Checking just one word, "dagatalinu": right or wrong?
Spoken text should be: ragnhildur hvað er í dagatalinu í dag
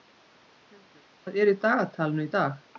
right